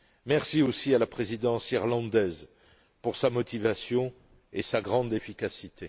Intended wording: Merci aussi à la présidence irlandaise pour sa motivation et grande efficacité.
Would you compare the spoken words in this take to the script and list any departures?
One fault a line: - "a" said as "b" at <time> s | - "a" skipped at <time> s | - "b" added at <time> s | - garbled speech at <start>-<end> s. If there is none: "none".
- "sa" added at 4.6 s